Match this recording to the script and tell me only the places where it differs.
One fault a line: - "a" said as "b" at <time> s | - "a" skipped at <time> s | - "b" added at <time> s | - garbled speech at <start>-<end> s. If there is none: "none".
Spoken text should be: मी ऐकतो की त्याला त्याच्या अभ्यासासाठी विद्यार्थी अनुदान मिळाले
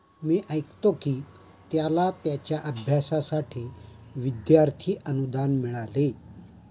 none